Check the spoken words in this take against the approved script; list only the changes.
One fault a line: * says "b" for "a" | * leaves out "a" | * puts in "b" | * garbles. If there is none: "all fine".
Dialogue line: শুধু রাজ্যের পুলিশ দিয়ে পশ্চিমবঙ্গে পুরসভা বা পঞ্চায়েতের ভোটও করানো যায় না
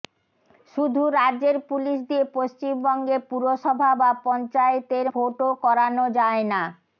all fine